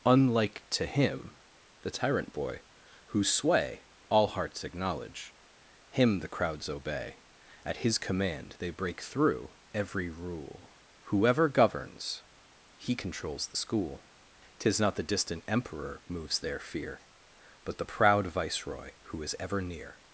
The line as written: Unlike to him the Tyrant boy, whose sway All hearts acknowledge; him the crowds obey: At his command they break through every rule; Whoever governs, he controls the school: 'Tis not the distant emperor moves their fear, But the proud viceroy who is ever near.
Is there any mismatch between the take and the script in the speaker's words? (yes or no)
no